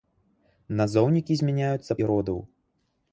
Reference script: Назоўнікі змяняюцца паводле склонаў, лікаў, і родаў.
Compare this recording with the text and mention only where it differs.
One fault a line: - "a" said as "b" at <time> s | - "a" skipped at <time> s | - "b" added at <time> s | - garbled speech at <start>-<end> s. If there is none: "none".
- "паводле склонаў лікаў" skipped at 2.0 s